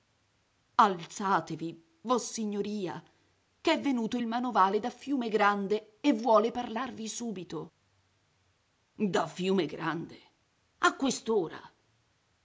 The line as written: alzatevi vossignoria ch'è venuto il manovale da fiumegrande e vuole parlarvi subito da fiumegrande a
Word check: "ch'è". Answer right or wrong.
right